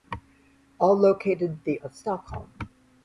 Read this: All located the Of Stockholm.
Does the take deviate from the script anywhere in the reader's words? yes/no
no